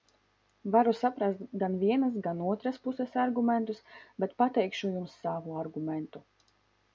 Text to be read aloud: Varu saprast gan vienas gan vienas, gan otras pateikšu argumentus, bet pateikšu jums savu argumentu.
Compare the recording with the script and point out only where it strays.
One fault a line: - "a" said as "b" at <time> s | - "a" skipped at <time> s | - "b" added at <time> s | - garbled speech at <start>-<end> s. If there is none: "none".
- "vienas gan" skipped at 2.4 s
- "pateikšu" said as "puses" at 2.8 s